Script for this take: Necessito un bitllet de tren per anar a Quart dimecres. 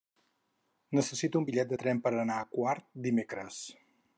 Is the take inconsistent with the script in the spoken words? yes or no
no